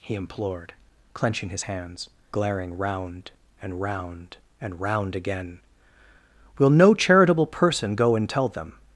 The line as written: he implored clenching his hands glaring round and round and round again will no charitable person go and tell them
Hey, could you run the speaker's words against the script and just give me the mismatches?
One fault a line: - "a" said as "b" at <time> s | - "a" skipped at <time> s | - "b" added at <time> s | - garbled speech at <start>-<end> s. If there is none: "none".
none